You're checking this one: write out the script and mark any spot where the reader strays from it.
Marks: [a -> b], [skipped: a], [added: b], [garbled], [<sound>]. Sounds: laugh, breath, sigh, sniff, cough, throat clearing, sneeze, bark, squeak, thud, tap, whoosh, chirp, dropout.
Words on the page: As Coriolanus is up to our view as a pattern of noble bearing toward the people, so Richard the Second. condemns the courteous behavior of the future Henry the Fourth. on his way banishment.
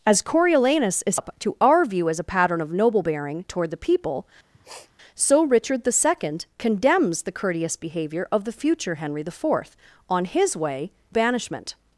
As Coriolanus is up to our view as a pattern of noble bearing toward the people, [sniff] so Richard the Second. condemns the courteous behavior of the future Henry the Fourth. on his way banishment.